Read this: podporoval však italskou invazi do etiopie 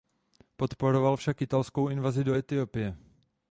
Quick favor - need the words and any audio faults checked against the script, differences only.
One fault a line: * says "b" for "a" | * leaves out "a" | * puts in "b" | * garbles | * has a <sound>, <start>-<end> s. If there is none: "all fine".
all fine